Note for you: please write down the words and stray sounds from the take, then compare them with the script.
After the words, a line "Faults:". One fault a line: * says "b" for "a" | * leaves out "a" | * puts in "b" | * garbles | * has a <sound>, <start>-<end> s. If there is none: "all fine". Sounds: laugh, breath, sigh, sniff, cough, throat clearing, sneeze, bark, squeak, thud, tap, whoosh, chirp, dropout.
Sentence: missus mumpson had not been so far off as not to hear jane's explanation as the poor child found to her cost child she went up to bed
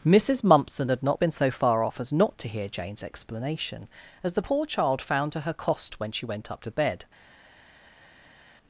missus mumpson had not been so far off as not to hear jane's explanation as the poor child found to her cost when she went up to bed
Faults:
* says "when" for "child"